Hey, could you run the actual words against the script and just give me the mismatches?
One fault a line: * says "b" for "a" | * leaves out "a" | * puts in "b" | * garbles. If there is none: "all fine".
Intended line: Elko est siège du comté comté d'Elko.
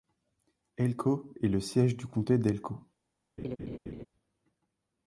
* puts in "le"
* leaves out "comté"